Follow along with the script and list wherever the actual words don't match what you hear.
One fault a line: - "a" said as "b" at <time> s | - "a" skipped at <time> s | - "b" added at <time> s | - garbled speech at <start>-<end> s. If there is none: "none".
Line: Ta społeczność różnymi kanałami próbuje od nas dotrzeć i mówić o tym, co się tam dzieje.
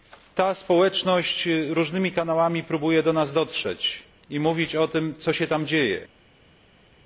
- "od" said as "do" at 3.0 s